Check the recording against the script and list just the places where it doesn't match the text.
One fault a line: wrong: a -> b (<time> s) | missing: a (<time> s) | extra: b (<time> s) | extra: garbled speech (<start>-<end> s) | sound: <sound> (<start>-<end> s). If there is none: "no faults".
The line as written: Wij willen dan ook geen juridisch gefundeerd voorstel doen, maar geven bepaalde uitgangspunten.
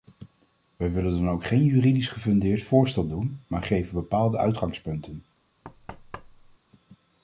sound: thud (5.6-6.6 s)